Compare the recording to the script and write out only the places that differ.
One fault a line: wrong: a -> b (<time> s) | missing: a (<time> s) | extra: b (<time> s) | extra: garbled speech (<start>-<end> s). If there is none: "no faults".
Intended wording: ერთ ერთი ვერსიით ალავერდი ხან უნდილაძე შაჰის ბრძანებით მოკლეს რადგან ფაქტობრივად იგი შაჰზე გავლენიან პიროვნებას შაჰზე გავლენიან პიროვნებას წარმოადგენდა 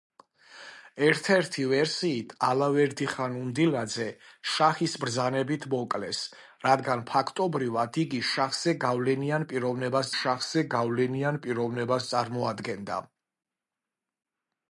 no faults